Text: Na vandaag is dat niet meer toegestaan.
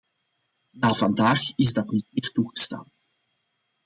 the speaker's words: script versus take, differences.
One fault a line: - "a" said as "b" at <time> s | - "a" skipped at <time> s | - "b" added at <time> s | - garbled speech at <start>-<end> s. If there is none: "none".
none